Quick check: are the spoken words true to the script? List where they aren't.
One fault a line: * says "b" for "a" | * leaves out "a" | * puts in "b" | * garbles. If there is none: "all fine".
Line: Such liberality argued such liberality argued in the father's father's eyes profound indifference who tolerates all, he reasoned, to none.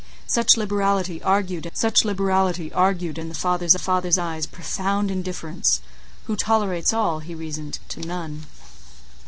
all fine